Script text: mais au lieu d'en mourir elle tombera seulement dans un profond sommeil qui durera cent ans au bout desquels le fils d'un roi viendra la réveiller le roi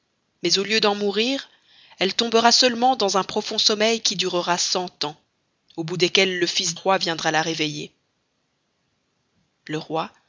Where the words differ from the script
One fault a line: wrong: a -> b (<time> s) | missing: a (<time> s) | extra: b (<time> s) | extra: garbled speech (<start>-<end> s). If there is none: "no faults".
missing: d'un (6.7 s)